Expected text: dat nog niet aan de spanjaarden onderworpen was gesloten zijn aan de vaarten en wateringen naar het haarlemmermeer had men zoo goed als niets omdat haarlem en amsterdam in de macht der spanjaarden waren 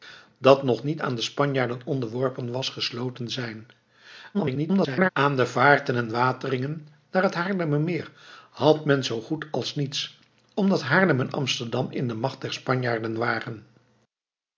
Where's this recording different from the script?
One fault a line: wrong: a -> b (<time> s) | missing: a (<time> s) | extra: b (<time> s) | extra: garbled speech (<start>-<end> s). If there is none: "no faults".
extra: garbled speech (4.3-5.1 s)